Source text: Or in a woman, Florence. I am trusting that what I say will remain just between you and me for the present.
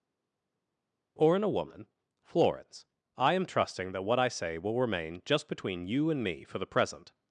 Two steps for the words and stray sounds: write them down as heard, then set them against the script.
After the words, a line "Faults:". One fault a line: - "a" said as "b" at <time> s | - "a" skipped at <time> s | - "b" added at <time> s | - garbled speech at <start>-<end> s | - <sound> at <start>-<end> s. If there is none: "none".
Or in a woman, Florence. I am trusting that what I say will remain just between you and me for the present.
Faults:
none